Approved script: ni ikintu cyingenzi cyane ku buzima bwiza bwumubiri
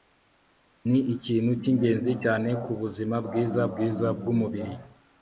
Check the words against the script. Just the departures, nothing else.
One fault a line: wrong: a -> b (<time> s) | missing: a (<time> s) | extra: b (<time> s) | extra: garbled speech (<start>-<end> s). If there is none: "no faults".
extra: bwiza (3.7 s)